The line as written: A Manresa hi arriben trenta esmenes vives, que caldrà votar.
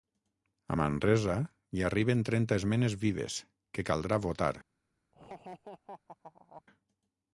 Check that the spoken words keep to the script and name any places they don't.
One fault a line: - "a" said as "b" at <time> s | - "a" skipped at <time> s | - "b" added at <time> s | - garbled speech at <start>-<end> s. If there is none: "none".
none